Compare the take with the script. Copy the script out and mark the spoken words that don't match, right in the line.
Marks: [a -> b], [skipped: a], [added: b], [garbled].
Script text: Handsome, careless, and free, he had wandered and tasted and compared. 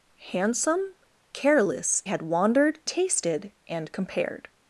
Handsome, careless, [skipped: and free, he] had wandered [skipped: and] tasted and compared.